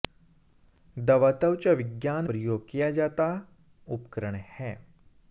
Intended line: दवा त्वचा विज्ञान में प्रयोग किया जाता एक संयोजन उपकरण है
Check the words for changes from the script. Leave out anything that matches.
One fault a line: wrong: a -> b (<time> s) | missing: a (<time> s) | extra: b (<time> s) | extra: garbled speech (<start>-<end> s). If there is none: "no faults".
missing: में (2.3 s)
missing: एक संयोजन (3.3 s)